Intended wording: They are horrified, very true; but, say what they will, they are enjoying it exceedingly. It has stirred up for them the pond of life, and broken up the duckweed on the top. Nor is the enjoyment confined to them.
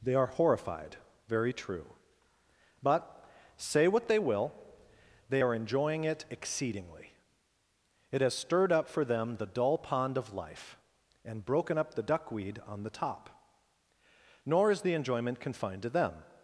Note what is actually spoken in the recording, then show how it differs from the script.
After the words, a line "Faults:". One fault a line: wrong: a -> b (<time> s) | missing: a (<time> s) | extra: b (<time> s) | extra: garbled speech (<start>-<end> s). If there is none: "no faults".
They are horrified, very true; but, say what they will, they are enjoying it exceedingly. It has stirred up for them the dull pond of life, and broken up the duckweed on the top. Nor is the enjoyment confined to them.
Faults:
extra: dull (9.5 s)